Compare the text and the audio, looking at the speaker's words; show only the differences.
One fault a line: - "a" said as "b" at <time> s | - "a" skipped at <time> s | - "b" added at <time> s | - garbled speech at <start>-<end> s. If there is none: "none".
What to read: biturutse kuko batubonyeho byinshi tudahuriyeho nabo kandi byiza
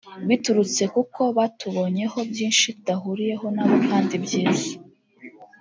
none